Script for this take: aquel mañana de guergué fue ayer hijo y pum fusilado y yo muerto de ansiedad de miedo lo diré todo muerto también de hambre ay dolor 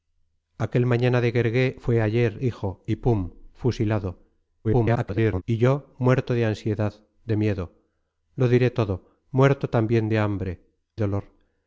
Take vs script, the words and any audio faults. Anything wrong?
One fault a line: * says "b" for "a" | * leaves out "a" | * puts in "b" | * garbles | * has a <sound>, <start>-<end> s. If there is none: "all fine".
* garbles
* leaves out "ay"